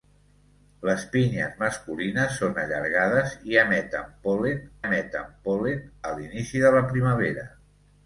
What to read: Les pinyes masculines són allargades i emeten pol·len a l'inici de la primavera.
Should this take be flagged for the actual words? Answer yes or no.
yes